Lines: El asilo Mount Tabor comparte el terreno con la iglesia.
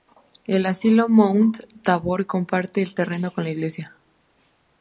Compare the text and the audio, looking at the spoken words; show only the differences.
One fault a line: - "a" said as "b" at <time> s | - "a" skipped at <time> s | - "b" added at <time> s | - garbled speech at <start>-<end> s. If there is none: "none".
none